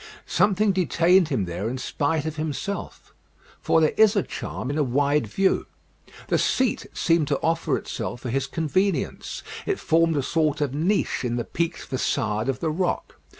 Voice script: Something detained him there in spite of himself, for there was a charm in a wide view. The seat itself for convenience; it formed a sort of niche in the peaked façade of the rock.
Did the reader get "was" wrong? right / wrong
wrong